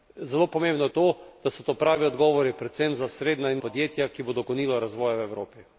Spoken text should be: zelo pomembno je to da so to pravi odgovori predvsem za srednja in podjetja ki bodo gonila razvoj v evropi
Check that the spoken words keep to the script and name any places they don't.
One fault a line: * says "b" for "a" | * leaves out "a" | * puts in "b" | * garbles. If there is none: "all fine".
all fine